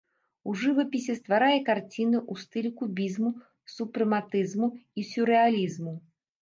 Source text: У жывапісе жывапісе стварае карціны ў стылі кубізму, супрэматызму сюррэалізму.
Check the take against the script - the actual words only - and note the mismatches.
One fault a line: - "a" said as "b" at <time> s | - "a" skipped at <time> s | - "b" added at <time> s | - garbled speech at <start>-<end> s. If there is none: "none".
- "жывапісе" skipped at 1.1 s
- "і" added at 4.8 s